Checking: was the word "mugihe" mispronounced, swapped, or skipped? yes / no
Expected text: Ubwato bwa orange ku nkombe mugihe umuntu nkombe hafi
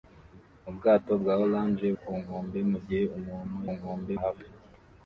no